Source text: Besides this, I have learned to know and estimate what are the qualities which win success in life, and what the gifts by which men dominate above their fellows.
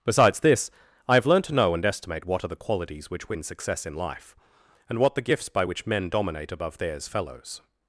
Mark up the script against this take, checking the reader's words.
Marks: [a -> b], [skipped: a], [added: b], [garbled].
Besides this, I have learned to know and estimate what are the qualities which win success in life, and what the gifts by which men dominate above [their -> theirs] fellows.